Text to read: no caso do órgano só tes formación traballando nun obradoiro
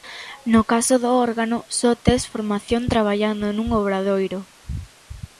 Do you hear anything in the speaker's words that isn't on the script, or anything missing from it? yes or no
no